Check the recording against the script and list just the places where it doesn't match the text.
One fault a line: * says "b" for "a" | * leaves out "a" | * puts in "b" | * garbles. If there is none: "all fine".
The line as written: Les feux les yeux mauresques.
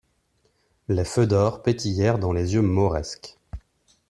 * puts in "d'or pétillèrent dans"